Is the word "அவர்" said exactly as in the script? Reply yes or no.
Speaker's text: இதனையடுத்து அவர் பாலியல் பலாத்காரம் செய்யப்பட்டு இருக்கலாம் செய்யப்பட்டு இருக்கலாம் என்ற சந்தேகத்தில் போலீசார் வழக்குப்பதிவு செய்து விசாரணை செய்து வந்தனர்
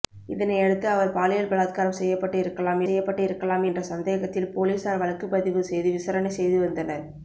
yes